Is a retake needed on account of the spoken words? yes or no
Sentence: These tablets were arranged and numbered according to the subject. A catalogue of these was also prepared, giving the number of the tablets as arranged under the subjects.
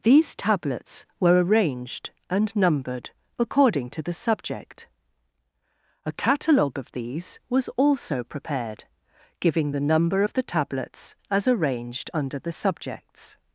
no